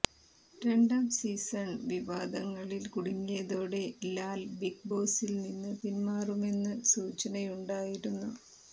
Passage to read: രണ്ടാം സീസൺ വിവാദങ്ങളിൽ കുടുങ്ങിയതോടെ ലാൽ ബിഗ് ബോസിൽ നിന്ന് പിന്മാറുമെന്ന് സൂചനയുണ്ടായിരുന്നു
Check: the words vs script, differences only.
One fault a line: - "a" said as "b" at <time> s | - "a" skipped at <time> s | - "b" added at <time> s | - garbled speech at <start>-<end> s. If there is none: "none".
none